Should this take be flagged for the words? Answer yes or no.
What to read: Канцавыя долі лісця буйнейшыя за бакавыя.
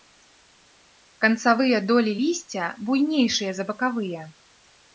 no